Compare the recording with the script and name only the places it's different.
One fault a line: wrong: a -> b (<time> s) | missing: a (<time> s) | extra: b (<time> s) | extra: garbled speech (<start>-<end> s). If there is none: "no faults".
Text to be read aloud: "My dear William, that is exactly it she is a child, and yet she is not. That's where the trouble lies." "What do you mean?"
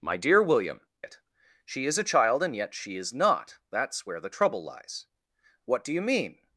missing: that is exactly (0.8 s)